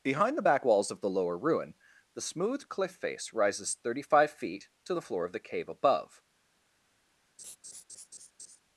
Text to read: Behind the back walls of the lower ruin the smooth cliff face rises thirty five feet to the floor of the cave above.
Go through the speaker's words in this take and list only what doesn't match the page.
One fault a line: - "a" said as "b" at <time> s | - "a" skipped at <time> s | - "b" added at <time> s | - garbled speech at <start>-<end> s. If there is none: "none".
none